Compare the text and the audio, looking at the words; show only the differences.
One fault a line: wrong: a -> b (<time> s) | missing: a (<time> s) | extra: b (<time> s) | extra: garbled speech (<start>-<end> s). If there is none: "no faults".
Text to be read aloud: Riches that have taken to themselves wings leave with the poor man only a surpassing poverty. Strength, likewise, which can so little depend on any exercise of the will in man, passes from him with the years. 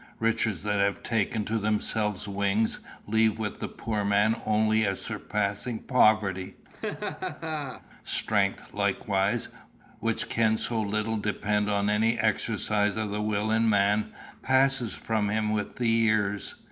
no faults